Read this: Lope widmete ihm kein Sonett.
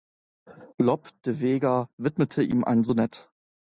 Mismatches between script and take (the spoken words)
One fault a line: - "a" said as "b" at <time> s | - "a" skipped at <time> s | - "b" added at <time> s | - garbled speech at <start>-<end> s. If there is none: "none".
- "de Vega" added at 1.2 s
- "kein" said as "ein" at 2.6 s